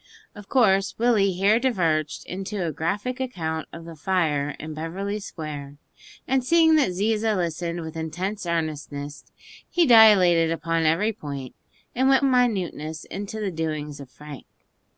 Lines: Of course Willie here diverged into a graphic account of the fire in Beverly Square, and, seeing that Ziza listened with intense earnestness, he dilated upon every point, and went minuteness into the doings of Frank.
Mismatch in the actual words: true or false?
false